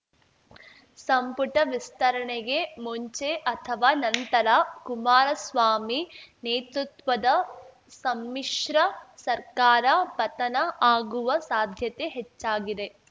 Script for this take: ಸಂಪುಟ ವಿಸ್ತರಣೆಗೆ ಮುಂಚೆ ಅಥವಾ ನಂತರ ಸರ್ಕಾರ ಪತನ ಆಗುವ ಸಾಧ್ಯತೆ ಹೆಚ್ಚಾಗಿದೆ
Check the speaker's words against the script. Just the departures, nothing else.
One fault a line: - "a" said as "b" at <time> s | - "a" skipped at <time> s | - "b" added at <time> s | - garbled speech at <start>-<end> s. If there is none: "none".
- "ಕುಮಾರಸ್ವಾಮಿ ನೇತೃತ್ವದ ಸಮ್ಮಿಶ್ರ" added at 4.8 s